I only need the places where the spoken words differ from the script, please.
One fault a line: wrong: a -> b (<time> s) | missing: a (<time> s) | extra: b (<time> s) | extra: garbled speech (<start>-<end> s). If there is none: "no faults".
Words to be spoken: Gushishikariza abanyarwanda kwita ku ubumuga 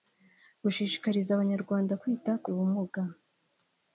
no faults